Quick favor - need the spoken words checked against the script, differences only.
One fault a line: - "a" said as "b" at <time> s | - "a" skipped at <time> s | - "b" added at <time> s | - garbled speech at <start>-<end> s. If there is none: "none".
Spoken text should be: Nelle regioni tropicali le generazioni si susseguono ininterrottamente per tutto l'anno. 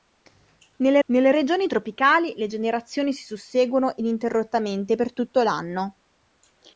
- "nelle" added at 1.1 s